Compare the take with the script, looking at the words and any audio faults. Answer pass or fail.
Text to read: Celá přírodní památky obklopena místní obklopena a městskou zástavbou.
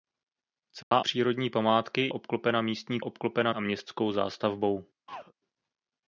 fail